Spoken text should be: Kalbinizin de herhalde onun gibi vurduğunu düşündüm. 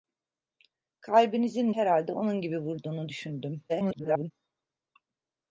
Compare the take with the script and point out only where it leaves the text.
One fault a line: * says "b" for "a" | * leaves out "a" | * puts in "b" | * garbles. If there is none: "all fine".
* leaves out "de"
* garbles